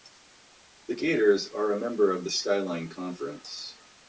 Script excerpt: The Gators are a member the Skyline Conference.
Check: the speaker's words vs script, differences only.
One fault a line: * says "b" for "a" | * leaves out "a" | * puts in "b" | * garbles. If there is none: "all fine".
* puts in "of"